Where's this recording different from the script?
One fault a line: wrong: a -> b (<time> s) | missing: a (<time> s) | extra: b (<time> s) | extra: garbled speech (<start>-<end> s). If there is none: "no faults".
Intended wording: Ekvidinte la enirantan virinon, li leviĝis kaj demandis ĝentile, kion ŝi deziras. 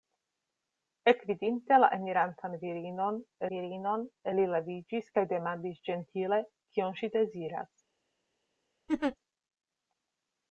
extra: virinon (3.5 s)